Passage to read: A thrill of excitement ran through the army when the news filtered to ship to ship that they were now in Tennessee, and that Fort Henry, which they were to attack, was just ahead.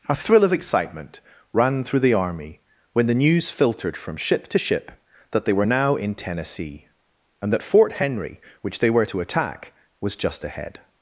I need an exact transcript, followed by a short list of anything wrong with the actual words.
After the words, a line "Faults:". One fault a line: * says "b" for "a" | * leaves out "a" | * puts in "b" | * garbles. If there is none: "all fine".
A thrill of excitement ran through the army when the news filtered from ship to ship that they were now in Tennessee, and that Fort Henry, which they were to attack, was just ahead.
Faults:
* says "from" for "to"